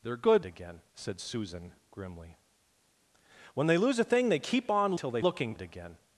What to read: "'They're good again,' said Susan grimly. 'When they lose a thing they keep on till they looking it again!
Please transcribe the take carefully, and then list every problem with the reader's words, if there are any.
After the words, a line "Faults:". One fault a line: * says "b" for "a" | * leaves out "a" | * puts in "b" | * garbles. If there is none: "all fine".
"'They're good again,' said Susan grimly. 'When they lose a thing they keep on till they looking it again!
Faults:
all fine